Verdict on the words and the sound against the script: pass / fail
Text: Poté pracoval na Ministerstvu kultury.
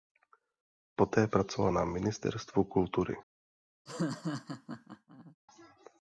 fail